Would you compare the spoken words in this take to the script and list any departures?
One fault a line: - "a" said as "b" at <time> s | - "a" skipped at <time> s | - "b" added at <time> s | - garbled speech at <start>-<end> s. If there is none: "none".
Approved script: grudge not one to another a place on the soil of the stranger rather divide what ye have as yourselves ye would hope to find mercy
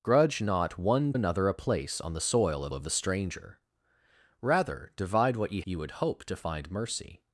- "to" skipped at 1.1 s
- "of" added at 2.7 s
- "have as yourselves" skipped at 5.6 s